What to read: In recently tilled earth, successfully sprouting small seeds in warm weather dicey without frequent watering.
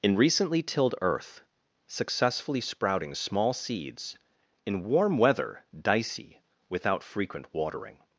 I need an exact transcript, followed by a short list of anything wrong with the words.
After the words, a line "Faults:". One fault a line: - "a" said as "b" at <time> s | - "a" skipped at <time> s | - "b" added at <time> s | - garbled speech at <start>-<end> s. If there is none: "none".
In recently tilled earth, successfully sprouting small seeds in warm weather dicey without frequent watering.
Faults:
none